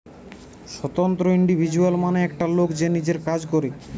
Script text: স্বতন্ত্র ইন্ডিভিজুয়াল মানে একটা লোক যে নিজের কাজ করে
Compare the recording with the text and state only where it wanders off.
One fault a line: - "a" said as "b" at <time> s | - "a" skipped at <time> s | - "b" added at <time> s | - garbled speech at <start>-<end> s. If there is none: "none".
none